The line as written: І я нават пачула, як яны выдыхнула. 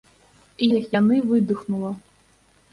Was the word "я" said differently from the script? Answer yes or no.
yes